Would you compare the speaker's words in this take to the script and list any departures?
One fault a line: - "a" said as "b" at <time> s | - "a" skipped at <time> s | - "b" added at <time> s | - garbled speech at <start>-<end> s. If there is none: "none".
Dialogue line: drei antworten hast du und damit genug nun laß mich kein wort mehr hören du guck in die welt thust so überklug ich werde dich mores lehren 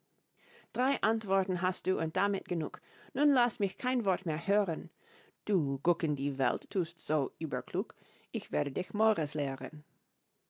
none